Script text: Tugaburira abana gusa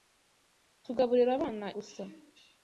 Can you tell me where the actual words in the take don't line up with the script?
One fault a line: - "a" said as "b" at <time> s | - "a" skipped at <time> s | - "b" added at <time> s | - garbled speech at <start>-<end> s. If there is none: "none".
none